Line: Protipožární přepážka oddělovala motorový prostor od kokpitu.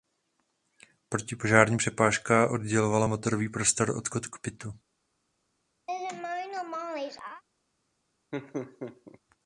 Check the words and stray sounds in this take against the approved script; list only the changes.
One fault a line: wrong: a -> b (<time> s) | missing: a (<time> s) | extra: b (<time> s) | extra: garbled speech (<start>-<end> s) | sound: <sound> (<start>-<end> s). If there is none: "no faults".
sound: laugh (5.9-7.4 s)
sound: laugh (8.3-9.2 s)